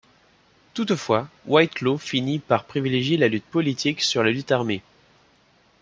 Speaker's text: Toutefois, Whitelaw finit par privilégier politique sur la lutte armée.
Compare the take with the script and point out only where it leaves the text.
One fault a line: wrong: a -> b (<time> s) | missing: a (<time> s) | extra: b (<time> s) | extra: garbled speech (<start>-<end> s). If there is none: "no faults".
extra: la lutte (3.2 s)